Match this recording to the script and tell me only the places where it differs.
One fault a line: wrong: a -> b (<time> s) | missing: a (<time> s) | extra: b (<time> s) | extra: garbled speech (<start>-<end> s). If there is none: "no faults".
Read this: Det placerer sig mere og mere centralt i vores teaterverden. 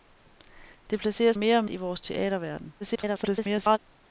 missing: sig (1.3 s)
missing: mere centralt (1.6 s)
extra: garbled speech (2.8-3.8 s)